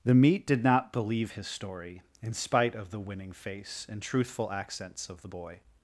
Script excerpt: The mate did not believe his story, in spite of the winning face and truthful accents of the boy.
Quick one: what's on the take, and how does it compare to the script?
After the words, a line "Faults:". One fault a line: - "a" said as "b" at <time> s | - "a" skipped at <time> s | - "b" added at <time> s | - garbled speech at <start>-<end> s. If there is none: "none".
The meat did not believe his story, in spite of the winning face and truthful accents of the boy.
Faults:
- "mate" said as "meat" at 0.1 s